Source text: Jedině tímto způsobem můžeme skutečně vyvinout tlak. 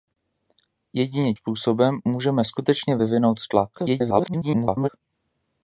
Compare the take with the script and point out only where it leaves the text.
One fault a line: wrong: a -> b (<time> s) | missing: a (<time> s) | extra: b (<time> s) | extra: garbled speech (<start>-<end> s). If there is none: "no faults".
missing: tímto (1.3 s)
extra: garbled speech (3.8-4.9 s)